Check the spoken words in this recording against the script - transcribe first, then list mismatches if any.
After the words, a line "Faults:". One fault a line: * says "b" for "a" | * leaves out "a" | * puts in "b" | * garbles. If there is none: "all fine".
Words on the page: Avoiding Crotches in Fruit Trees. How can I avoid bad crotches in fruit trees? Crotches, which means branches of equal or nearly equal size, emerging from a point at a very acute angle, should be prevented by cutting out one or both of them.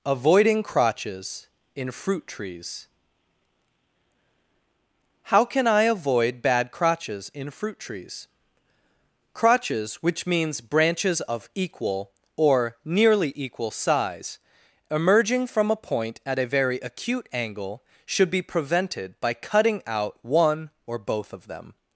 Avoiding Crotches in Fruit Trees. How can I avoid bad crotches in fruit trees? Crotches, which means branches of equal or nearly equal size, emerging from a point at a very acute angle, should be prevented by cutting out one or both of them.
Faults:
all fine